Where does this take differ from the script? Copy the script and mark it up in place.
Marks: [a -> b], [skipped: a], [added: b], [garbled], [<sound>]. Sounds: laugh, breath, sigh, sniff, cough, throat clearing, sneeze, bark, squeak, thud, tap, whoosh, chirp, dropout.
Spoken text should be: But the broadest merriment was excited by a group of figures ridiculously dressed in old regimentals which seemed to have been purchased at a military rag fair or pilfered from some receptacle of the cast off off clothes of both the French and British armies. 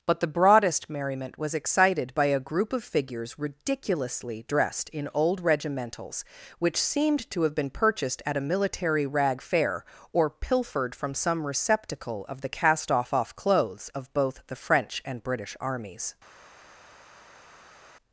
But the broadest merriment was excited by a group of figures ridiculously dressed in old regimentals which seemed to have been purchased at a military rag fair or pilfered from some receptacle of the cast off off clothes of both the French and British armies.